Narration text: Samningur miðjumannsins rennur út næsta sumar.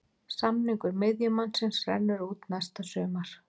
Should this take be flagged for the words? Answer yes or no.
no